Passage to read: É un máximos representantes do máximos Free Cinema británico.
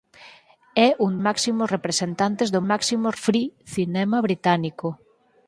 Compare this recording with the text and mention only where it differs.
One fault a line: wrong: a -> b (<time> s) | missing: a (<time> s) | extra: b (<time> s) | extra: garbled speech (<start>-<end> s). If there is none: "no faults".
no faults